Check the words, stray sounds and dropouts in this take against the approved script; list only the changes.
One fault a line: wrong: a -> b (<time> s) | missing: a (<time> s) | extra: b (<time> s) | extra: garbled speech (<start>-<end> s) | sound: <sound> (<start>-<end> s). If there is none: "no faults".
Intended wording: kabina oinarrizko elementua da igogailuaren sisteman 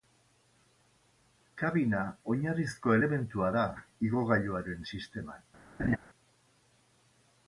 sound: laugh (5.8-6.0 s)